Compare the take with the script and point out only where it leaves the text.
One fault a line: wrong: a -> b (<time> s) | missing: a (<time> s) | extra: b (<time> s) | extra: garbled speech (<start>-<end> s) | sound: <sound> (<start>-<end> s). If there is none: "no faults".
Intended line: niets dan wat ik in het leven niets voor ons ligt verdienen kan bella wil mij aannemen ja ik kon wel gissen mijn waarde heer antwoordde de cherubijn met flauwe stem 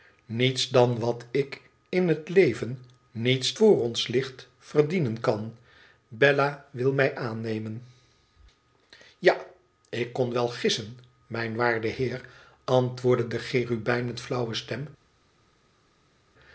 no faults